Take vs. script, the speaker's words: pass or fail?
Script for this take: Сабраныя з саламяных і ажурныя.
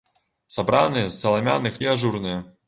pass